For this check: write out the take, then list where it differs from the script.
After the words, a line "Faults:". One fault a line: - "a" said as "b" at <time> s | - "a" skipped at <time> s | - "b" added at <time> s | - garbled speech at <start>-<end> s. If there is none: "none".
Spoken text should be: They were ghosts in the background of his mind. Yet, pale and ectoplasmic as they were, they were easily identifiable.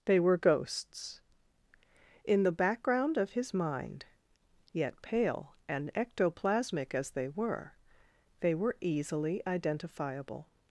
They were ghosts in the background of his mind. Yet, pale and ectoplasmic as they were, they were easily identifiable.
Faults:
none